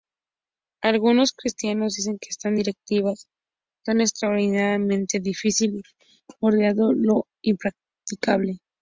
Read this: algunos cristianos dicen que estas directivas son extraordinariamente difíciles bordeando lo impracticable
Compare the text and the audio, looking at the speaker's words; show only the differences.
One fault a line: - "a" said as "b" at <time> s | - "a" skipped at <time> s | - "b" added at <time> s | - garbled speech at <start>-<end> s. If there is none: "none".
none